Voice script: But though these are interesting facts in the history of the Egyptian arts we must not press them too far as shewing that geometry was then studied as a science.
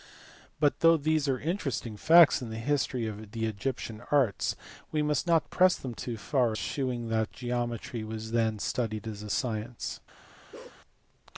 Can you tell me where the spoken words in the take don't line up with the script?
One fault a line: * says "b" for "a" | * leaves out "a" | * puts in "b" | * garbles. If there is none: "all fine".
* leaves out "as"